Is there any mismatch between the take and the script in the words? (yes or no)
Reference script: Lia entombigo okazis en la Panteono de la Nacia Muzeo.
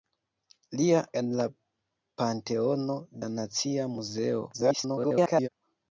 yes